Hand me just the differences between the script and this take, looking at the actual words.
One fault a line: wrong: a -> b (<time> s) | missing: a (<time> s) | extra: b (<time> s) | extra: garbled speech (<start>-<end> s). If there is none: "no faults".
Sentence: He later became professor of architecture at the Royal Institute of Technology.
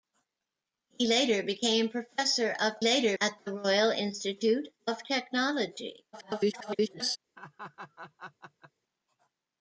wrong: architecture -> later (2.8 s)
extra: garbled speech (6.1-7.2 s)